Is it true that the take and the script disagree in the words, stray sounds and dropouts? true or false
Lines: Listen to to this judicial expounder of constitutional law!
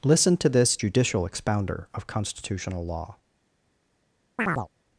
true